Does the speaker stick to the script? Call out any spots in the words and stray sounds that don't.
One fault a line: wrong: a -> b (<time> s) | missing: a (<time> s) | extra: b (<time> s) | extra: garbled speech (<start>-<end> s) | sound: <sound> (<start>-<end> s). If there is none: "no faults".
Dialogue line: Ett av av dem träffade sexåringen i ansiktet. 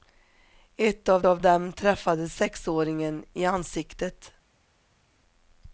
no faults